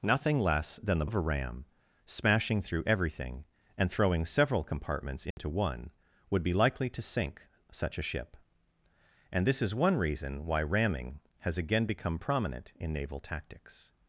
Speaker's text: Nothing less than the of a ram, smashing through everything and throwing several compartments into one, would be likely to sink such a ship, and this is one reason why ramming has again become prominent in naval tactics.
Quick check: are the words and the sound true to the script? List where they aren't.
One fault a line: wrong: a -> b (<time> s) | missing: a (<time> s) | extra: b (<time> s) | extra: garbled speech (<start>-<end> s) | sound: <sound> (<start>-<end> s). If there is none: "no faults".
sound: dropout (5.3-5.4 s)